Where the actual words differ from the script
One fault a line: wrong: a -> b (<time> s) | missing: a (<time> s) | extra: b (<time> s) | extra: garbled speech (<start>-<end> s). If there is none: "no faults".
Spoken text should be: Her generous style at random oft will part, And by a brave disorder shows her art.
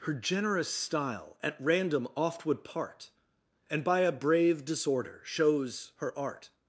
wrong: will -> would (2.5 s)